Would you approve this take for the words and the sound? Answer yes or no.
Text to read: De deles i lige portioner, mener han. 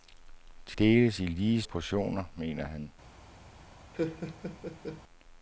no